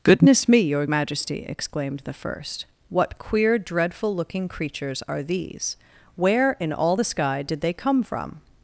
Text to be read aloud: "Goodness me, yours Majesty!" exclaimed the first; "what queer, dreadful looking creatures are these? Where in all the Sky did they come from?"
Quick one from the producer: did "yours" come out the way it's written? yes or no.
no